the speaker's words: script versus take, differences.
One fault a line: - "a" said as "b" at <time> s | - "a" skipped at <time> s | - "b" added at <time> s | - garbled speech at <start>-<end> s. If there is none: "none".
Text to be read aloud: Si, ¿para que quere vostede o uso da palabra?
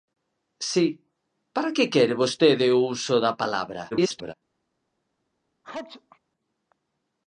- garbled speech at 3.9-4.3 s